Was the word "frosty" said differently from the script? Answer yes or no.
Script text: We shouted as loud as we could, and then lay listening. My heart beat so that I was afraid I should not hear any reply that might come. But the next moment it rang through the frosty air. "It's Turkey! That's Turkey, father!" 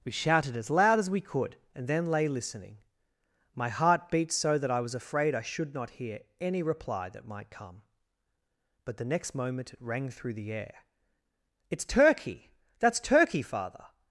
yes